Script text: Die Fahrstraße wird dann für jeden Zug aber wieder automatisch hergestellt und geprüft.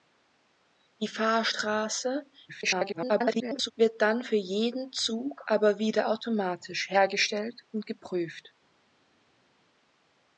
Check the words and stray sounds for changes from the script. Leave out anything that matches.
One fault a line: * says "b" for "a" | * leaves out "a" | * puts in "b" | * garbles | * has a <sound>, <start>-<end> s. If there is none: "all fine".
* garbles